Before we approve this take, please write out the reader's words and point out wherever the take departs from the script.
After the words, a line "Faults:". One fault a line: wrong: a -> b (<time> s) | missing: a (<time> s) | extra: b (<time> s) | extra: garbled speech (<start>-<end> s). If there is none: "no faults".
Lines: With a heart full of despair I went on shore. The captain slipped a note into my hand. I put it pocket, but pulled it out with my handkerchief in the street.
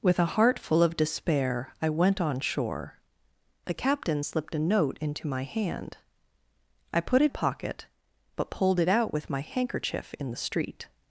With a heart full of despair I went on shore. The captain slipped a note into my hand. I put it pocket, but pulled it out with my handkerchief in the street.
Faults:
no faults